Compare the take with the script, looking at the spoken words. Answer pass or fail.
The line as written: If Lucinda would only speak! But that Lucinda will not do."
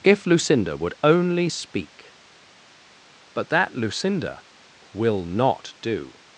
pass